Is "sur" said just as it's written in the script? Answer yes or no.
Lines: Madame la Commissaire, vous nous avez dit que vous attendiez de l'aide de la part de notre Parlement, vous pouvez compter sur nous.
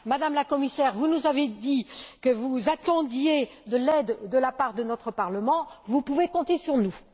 yes